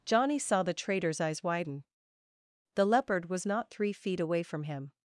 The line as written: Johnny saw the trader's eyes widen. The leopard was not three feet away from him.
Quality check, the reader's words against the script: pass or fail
pass